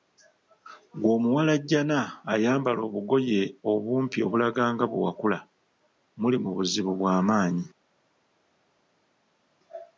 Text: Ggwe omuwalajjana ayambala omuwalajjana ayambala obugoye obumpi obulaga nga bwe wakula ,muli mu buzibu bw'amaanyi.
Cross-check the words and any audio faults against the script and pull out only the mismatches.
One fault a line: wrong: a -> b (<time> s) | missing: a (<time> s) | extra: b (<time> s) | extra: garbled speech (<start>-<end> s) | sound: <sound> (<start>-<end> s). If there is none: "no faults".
missing: omuwalajjana ayambala (2.8 s)